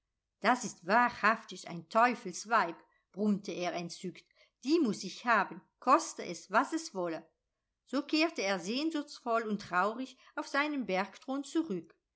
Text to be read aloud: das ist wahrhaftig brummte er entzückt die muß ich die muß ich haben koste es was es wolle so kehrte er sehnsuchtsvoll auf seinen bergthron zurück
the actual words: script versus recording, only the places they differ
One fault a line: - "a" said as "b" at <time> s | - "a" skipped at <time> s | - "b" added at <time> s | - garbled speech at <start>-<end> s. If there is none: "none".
- "ein teufelsweib" added at 1.7 s
- "die muß ich" skipped at 5.2 s
- "und traurig" added at 9.4 s